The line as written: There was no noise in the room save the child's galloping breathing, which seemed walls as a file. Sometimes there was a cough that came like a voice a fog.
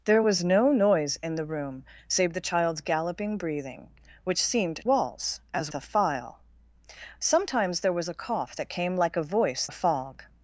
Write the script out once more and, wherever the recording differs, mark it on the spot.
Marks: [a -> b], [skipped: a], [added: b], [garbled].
There was no noise in the room save the child's galloping breathing, which seemed walls as a file. Sometimes there was a cough that came like a voice a fog.